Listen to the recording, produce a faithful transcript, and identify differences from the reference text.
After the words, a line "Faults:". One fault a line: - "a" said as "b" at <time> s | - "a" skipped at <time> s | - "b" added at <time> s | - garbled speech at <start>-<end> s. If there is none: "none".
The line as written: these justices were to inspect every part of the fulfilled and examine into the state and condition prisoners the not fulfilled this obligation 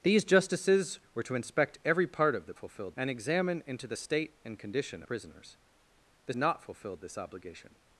these justices were to inspect every part of the fulfilled and examine into the state and condition prisoners the not fulfilled this obligation
Faults:
none